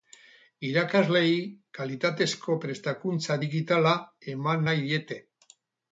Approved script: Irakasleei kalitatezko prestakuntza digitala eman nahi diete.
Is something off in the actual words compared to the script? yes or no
no